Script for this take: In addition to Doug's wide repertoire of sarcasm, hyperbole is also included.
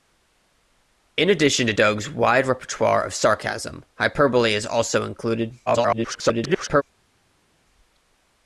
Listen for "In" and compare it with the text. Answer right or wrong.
right